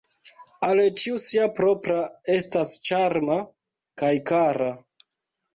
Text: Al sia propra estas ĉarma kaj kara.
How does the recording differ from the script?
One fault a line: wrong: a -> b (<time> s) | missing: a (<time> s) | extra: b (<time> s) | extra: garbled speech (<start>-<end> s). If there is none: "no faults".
extra: ĉiu (1.0 s)